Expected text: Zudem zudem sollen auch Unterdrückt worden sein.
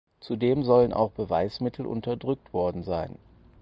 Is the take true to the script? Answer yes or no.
no